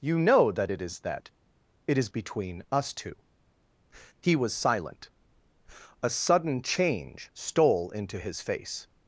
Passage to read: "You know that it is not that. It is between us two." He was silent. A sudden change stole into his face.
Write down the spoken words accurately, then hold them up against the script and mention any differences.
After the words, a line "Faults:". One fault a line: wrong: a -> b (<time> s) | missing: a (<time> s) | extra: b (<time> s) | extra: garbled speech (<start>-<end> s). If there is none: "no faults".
"You know that it is that. It is between us two." He was silent. A sudden change stole into his face.
Faults:
missing: not (1.0 s)